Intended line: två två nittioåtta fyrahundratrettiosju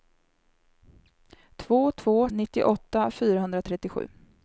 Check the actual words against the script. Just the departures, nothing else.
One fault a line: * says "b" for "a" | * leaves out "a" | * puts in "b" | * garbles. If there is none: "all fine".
all fine